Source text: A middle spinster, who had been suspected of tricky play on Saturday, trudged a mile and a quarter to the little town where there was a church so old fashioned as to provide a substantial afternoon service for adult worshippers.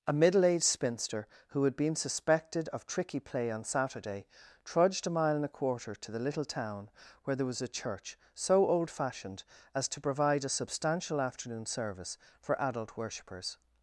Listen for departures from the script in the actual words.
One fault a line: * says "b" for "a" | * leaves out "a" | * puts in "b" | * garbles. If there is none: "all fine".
* puts in "aged"